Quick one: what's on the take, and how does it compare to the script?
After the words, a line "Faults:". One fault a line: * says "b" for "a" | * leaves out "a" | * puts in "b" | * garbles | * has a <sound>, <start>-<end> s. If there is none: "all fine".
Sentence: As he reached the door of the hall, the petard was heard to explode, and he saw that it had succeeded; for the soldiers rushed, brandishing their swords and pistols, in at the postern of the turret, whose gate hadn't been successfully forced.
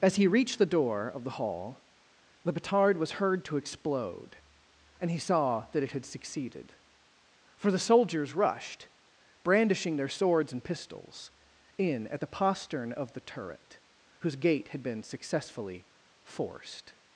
As he reached the door of the hall, the petard was heard to explode, and he saw that it had succeeded; for the soldiers rushed, brandishing their swords and pistols, in at the postern of the turret, whose gate had been successfully forced.
Faults:
* says "had" for "hadn't"